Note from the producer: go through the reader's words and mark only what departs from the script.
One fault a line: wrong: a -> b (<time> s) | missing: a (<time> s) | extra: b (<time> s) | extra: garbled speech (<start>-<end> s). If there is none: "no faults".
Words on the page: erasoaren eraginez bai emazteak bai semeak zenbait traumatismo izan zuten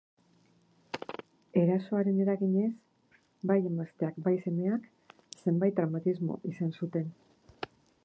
no faults